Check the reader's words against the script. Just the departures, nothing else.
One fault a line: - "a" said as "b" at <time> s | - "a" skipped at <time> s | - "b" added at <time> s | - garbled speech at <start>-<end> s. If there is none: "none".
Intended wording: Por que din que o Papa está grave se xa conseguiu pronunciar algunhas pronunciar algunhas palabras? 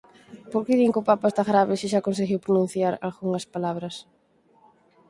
- "pronunciar algunhas" skipped at 3.5 s